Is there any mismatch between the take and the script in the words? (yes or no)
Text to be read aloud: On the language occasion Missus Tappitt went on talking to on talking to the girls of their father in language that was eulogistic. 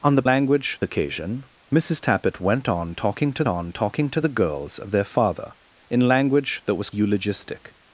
no